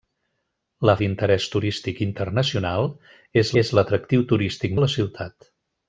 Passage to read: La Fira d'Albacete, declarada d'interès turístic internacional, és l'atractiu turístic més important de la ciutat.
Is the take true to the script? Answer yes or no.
no